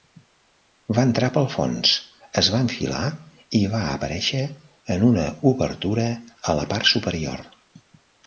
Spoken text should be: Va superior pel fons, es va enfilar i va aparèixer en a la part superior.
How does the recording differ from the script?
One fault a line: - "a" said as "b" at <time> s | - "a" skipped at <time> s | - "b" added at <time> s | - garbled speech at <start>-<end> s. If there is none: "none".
- "superior" said as "entrar" at 1.1 s
- "una obertura" added at 5.1 s